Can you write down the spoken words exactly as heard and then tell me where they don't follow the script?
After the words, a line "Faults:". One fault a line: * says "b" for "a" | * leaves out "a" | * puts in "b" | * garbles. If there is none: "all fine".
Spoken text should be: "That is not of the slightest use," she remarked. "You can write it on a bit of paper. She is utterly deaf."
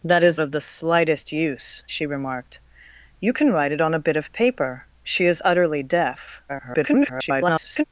"That is of the slightest use," she remarked. "You can write it on a bit of paper. She is utterly deaf." [garbled]
Faults:
* leaves out "not"
* garbles